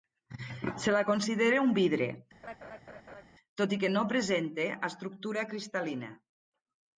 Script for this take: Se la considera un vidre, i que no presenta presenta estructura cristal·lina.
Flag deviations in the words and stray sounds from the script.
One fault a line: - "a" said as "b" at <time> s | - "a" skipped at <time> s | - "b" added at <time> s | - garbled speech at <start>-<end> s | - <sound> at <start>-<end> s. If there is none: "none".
- laugh at 2.4-3.2 s
- "tot" added at 3.6 s
- "presenta" skipped at 4.7 s